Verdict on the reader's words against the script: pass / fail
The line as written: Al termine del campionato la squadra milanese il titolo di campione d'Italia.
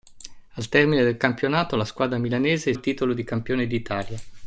pass